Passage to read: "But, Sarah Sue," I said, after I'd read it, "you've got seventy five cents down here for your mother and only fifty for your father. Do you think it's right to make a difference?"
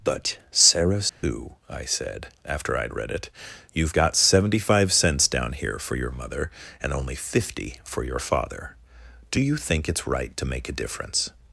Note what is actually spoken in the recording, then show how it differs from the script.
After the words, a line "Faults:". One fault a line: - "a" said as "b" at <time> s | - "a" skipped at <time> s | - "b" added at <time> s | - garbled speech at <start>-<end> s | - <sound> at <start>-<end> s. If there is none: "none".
"But, Sarah Sue," I said, after I'd read it, "you've got seventy five cents down here for your mother and only fifty for your father. Do you think it's right to make a difference?"
Faults:
- dropout at 1.1-1.2 s